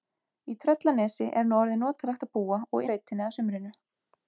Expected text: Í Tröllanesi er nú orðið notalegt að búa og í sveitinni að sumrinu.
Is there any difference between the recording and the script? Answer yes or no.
no